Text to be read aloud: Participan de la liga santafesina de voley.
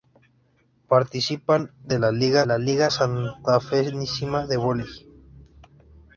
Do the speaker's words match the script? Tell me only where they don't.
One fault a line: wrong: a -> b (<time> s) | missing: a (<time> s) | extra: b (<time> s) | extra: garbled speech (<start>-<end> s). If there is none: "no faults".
extra: la liga (2.4 s)